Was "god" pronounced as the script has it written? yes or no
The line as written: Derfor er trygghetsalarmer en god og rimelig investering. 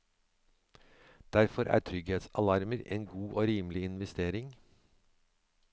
yes